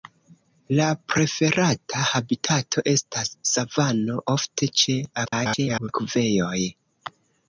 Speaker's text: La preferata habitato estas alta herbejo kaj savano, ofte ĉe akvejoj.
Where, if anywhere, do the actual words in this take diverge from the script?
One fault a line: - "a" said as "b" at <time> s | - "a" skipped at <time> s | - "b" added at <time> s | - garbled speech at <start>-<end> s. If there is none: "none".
- "alta herbejo kaj" skipped at 3.3 s
- garbled speech at 5.2-5.9 s